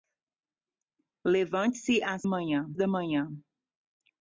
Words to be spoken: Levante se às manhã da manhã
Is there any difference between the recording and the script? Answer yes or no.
no